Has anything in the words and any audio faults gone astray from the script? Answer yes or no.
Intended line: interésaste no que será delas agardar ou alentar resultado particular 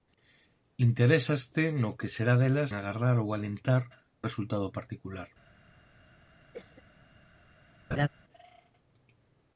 yes